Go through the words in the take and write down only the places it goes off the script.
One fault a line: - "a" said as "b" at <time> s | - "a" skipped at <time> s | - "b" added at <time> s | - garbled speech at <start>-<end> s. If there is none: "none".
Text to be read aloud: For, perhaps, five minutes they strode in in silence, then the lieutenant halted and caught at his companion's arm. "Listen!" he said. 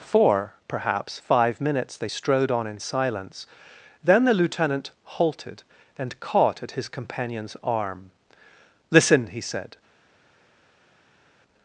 - "in" said as "on" at 2.5 s